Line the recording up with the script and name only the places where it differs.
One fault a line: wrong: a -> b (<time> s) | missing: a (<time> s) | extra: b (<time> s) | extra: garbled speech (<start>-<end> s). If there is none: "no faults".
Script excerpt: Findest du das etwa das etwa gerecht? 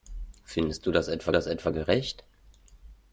no faults